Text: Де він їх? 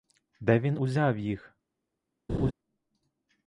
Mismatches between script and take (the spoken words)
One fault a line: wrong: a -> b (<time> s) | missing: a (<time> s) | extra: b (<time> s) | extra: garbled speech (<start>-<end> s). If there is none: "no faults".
extra: узяв (0.8 s)